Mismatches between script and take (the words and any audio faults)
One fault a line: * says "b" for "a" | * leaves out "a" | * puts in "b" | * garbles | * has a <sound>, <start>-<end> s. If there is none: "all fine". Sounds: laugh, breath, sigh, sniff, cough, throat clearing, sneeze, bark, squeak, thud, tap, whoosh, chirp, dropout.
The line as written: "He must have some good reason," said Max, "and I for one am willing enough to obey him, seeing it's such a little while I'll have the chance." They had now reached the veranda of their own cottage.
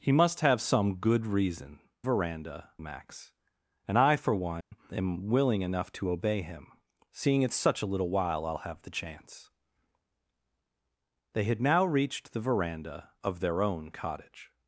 * says "veranda" for "said"
* has a dropout, 4.6-4.7 s